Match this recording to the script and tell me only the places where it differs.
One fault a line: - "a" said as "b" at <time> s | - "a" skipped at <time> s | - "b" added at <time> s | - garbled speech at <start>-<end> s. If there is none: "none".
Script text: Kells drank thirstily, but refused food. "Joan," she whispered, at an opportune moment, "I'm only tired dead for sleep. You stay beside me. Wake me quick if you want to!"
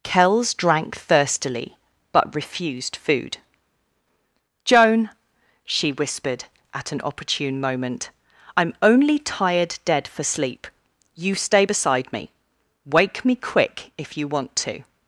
none